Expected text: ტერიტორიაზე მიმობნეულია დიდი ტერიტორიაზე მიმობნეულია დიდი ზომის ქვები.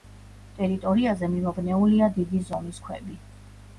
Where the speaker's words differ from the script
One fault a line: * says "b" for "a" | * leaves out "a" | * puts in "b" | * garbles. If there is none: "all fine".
* leaves out "ტერიტორიაზე მიმობნეულია დიდი"